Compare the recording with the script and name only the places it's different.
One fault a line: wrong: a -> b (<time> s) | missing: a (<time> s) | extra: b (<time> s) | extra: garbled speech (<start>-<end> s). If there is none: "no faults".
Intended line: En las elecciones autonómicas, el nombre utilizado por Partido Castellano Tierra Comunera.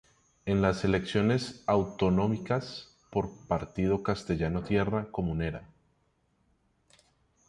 missing: el nombre utilizado (3.0 s)